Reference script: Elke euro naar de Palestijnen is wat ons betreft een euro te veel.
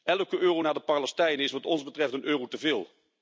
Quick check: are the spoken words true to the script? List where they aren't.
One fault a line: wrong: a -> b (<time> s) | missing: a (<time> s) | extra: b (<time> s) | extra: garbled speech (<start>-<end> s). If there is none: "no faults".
no faults